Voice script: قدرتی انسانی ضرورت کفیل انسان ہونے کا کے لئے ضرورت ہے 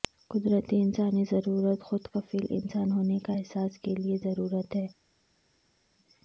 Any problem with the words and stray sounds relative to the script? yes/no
yes